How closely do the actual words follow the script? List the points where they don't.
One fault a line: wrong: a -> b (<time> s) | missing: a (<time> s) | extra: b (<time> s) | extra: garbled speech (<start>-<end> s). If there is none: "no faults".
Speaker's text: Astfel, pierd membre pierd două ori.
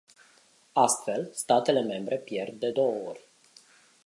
wrong: pierd -> statele (1.3 s)
extra: de (2.6 s)